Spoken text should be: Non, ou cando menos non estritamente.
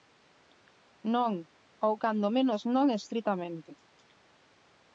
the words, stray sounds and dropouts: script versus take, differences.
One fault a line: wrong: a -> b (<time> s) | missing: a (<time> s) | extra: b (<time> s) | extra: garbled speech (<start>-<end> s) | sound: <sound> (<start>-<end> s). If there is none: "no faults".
no faults